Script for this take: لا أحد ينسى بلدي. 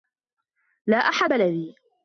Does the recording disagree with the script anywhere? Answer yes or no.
yes